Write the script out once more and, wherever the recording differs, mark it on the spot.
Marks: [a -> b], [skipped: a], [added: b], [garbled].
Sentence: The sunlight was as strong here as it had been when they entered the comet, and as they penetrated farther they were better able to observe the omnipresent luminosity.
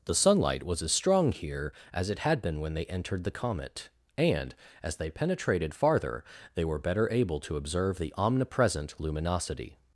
The sunlight was as strong here as it had been when they entered the comet, and as they penetrated farther they were better able to observe the omnipresent luminosity.